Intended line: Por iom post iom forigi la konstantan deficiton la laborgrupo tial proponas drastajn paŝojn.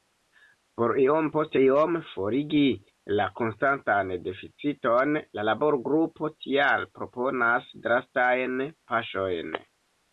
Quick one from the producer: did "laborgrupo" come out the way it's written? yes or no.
yes